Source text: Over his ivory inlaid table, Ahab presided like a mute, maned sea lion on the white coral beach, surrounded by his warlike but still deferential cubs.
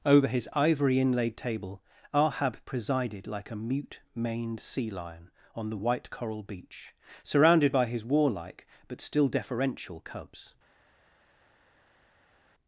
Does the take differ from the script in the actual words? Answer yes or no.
no